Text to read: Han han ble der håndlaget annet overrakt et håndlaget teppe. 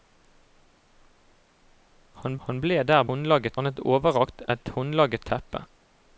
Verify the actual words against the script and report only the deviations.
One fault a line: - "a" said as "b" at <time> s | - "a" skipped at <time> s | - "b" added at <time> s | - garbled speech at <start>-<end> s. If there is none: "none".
none